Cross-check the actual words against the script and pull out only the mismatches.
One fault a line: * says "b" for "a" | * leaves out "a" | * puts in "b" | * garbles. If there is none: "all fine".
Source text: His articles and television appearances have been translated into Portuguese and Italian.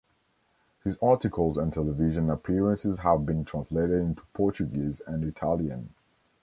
all fine